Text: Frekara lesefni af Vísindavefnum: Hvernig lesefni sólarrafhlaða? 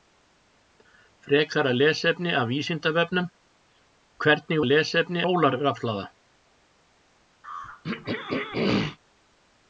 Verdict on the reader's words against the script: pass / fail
pass